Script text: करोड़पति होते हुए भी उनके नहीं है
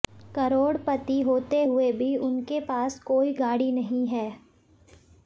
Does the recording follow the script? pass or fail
fail